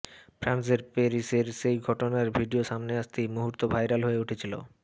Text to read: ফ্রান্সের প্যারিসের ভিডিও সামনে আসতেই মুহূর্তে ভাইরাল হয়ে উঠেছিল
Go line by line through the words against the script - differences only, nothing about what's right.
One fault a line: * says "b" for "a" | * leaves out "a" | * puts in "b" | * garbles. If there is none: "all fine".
* puts in "সেই ঘটনার"